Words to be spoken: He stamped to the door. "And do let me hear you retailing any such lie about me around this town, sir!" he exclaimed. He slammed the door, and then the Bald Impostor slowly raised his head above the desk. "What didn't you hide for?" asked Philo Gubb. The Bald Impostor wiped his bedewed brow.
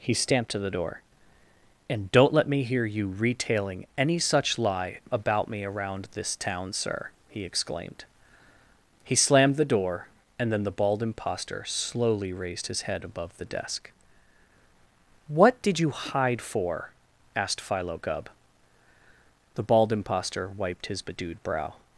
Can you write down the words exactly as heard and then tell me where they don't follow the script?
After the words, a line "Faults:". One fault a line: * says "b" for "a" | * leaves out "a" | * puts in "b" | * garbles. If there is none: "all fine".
He stamped to the door. "And don't let me hear you retailing any such lie about me around this town, sir!" he exclaimed. He slammed the door, and then the Bald Impostor slowly raised his head above the desk. "What did you hide for?" asked Philo Gubb. The Bald Impostor wiped his bedewed brow.
Faults:
* says "don't" for "do"
* says "did" for "didn't"